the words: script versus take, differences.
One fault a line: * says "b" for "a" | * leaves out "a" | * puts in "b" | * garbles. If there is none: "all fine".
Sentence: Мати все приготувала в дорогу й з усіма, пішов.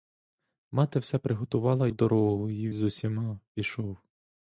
all fine